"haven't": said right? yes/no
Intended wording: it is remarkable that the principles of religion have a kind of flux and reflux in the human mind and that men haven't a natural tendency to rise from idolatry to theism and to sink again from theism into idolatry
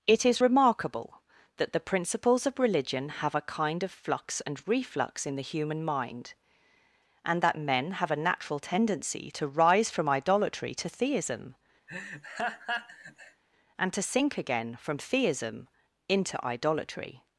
no